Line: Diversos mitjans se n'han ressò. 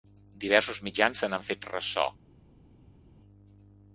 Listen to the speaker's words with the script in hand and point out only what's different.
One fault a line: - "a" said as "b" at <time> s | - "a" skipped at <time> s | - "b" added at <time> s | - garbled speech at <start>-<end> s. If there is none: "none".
- "fet" added at 1.5 s